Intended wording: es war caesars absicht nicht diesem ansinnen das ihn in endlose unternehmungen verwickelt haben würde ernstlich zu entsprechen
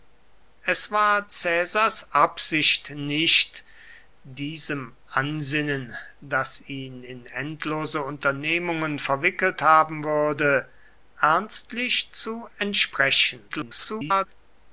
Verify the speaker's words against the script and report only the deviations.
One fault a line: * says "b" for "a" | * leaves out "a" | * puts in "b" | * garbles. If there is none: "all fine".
* garbles